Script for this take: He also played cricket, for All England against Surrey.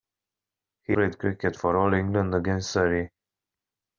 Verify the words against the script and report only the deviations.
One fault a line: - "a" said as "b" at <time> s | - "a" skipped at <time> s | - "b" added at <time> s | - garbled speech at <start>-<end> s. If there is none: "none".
- "also" skipped at 1.0 s